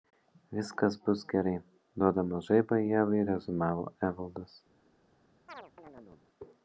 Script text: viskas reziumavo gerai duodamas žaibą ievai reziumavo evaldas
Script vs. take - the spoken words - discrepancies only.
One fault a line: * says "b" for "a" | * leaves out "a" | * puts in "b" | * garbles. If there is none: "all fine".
* says "bus" for "reziumavo"